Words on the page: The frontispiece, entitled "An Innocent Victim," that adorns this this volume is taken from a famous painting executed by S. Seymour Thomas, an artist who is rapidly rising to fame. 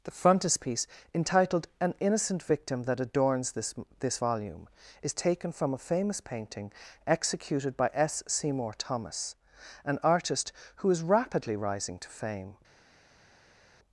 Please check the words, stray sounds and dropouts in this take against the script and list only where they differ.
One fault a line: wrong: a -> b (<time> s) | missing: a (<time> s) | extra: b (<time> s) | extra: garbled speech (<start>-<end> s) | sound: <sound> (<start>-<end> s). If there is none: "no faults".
no faults